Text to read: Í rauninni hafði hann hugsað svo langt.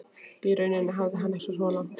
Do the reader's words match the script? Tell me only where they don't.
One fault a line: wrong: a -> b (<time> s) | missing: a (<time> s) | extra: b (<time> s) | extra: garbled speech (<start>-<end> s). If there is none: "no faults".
no faults